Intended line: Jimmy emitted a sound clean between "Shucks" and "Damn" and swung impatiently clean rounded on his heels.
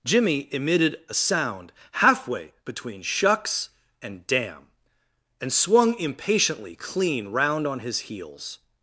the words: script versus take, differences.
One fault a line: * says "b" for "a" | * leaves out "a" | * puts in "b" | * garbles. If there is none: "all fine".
* says "halfway" for "clean"
* says "round" for "rounded"